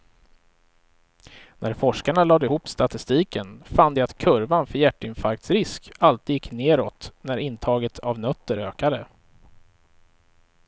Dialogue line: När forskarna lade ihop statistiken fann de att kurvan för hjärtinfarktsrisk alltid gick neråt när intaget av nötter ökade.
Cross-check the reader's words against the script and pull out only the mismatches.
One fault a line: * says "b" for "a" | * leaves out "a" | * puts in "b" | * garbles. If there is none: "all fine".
all fine